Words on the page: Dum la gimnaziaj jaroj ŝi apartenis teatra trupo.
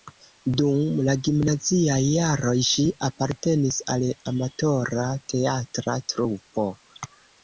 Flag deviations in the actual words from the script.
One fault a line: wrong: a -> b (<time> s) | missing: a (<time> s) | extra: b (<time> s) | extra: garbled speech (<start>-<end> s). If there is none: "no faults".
extra: al amatora (3.9 s)